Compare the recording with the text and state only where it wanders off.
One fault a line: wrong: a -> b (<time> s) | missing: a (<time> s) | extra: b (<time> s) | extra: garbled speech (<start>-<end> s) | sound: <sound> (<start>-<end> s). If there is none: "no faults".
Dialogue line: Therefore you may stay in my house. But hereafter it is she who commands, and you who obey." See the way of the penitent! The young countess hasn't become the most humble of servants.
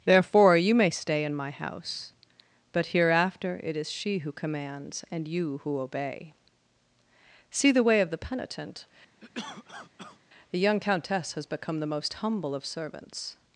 sound: cough (9.2-10.2 s)
wrong: hasn't -> has (11.3 s)